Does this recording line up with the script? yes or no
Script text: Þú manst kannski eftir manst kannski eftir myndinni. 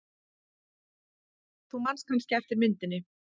no